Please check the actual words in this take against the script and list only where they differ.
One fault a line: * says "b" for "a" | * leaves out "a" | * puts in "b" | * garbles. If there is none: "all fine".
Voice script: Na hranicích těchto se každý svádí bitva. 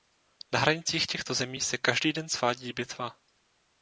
* puts in "zemí"
* puts in "den"